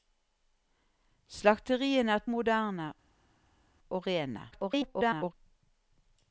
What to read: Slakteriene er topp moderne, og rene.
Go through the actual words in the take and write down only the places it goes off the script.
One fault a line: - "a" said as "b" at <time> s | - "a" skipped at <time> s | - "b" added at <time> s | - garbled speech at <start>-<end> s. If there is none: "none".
- "topp" skipped at 2.2 s
- garbled speech at 4.5-5.3 s